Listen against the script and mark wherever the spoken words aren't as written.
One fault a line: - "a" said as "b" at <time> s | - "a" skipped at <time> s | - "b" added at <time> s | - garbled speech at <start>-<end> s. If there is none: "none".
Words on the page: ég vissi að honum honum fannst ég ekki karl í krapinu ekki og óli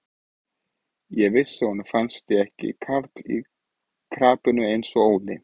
- "honum" skipped at 1.9 s
- "ekki" said as "eins" at 4.7 s